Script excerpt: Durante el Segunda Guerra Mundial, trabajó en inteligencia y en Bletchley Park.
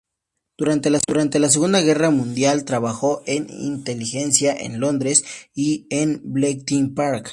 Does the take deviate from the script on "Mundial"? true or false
false